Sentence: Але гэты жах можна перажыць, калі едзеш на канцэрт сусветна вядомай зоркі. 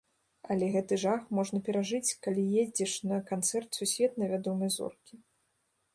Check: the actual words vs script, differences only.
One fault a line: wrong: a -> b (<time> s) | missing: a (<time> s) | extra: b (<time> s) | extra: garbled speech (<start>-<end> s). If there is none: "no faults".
no faults